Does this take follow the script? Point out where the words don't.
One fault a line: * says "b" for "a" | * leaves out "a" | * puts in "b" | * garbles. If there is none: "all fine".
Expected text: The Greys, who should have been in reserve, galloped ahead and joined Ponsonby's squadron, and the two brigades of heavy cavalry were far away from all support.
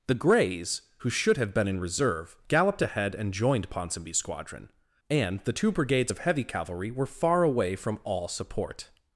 all fine